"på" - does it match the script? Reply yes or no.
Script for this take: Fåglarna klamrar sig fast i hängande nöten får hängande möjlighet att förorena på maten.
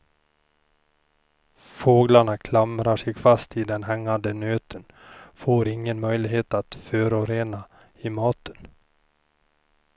no